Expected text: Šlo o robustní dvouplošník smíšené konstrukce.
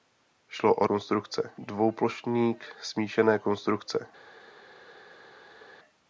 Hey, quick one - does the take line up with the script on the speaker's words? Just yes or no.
no